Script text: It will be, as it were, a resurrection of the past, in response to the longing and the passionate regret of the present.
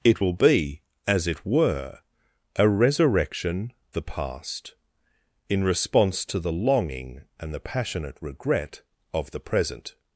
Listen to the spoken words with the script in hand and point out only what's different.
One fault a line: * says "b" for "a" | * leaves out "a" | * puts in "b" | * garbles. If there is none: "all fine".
* leaves out "of"